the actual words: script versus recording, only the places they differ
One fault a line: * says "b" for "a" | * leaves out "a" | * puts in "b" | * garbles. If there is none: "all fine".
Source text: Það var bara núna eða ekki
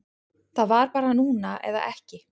all fine